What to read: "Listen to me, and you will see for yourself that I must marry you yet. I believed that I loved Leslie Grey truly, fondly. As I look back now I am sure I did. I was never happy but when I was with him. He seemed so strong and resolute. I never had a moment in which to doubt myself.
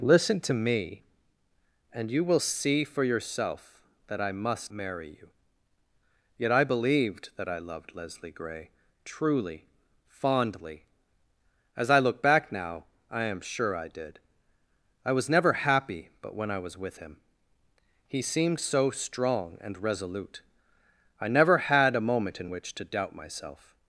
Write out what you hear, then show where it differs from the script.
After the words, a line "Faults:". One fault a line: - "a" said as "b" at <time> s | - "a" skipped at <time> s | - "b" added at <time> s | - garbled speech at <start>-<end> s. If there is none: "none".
"Listen to me, and you will see for yourself that I must marry you yet. I believed that I loved Leslie Grey truly, fondly. As I look back now I am sure I did. I was never happy but when I was with him. He seemed so strong and resolute. I never had a moment in which to doubt myself.
Faults:
none